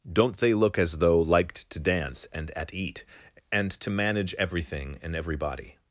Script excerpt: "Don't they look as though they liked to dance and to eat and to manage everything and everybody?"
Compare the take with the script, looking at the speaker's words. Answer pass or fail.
fail